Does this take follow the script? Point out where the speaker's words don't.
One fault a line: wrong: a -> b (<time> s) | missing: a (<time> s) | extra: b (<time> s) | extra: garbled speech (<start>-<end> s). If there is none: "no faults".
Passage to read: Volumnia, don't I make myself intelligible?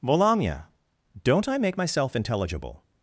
no faults